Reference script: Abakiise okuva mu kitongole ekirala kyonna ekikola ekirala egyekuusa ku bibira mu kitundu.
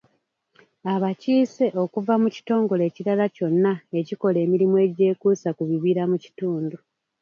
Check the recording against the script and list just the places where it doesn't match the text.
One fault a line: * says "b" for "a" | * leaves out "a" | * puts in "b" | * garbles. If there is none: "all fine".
* says "emirimu" for "ekirala"